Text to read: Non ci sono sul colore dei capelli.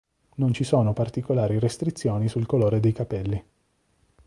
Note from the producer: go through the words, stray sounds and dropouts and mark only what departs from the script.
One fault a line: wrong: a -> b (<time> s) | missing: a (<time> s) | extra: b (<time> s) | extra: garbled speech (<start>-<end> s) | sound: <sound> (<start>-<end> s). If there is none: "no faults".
extra: particolari restrizioni (0.9 s)